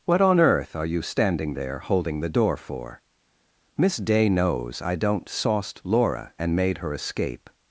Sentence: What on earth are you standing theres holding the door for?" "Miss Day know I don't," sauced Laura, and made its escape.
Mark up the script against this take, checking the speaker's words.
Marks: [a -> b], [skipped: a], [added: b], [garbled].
What on earth are you standing [theres -> there] holding the door for?" "Miss Day [know -> knows] I don't," sauced Laura, and made [its -> her] escape.